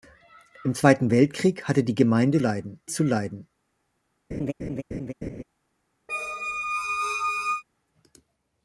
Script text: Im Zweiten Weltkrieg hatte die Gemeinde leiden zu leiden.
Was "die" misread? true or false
false